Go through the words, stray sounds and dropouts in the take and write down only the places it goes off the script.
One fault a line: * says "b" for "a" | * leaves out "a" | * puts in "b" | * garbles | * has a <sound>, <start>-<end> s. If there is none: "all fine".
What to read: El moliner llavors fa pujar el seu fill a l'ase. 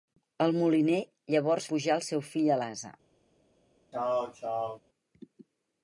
* leaves out "fa"
* has a throat clearing, 3.9-4.8 s